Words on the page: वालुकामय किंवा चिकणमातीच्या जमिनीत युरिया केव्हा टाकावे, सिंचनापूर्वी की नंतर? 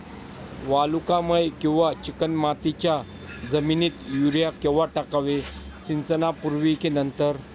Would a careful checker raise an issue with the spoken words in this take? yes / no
no